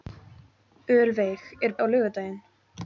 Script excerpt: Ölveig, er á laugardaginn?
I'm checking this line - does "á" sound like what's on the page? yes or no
yes